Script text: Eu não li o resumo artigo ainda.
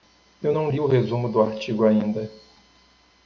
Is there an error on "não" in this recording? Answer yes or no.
no